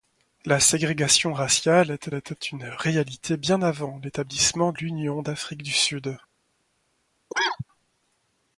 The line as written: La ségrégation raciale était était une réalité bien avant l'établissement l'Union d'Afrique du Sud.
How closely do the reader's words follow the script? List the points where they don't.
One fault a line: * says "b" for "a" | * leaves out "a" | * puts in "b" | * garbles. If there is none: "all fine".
all fine